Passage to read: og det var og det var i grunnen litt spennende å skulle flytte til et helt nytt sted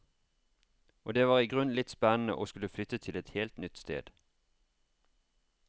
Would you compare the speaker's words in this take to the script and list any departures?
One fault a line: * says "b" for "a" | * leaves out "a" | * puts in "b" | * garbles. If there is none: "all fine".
* leaves out "og det var"